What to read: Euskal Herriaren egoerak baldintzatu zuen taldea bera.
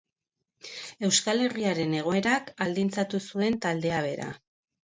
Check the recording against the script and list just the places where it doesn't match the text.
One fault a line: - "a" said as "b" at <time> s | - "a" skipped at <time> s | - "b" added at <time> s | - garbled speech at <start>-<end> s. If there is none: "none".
none